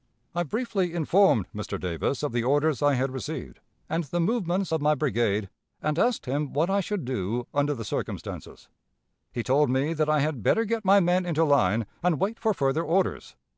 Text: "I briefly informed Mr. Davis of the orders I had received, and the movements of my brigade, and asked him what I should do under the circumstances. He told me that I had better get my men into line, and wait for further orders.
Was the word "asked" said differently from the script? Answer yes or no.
no